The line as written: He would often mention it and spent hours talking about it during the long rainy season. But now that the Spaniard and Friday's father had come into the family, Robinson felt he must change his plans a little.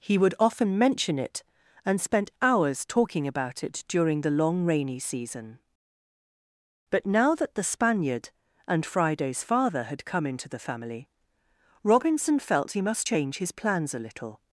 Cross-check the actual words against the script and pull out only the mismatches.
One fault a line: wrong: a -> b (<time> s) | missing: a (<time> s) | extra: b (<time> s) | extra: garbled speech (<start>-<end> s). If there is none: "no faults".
no faults